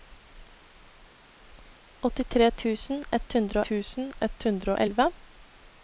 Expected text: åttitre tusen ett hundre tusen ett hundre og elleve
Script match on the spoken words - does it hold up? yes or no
yes